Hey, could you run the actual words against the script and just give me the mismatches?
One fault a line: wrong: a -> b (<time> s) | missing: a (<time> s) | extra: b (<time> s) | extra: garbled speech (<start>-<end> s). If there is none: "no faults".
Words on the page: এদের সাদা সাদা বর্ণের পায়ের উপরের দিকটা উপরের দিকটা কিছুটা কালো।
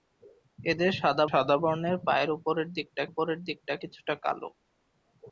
no faults